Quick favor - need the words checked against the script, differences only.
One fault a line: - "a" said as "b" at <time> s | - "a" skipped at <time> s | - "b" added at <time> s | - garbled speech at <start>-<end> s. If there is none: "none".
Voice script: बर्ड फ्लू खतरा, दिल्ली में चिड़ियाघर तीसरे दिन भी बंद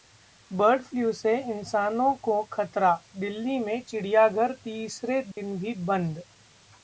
- "से इंसानों को" added at 1.1 s